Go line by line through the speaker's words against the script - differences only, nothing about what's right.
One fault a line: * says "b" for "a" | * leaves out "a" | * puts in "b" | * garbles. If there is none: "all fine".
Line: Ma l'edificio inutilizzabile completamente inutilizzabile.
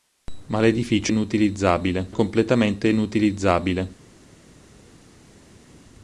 all fine